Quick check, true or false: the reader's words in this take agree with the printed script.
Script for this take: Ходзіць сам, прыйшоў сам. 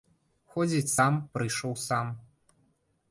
true